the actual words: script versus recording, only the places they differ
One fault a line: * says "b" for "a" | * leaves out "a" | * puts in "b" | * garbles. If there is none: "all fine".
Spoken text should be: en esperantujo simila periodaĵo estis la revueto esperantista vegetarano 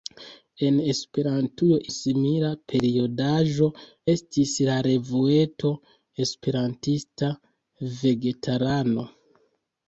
all fine